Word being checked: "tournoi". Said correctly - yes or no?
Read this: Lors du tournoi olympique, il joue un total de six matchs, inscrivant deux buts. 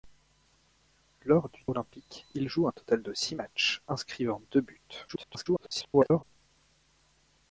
no